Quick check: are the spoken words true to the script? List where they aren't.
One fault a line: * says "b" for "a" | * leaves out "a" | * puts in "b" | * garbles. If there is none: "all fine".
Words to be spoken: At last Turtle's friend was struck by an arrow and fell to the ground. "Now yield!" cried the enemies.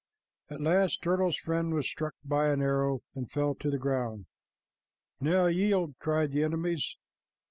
all fine